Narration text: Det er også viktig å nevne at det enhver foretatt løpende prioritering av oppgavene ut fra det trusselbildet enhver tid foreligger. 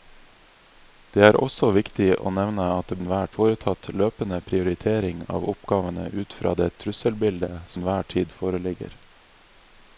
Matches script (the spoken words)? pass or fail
pass